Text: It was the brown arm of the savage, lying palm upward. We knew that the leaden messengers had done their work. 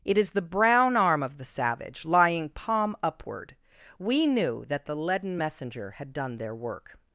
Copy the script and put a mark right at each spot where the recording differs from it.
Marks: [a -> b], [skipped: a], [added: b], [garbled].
It [was -> is] the brown arm of the savage, lying palm upward. We knew that the leaden [messengers -> messenger] had done their work.